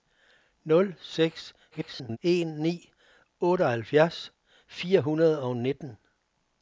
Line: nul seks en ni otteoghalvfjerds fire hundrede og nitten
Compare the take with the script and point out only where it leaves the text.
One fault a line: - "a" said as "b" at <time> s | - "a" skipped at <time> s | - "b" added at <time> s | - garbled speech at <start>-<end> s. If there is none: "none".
- garbled speech at 1.7-2.2 s